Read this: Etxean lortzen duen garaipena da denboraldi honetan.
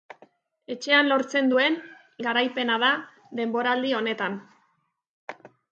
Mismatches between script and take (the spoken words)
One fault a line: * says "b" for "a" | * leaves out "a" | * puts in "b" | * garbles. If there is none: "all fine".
all fine